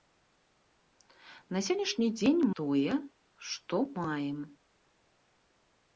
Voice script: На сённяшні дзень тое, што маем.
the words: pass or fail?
pass